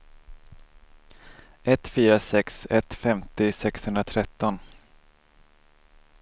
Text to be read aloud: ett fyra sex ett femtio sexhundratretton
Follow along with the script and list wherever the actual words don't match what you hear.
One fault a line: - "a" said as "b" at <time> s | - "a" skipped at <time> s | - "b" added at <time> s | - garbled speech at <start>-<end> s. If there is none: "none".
none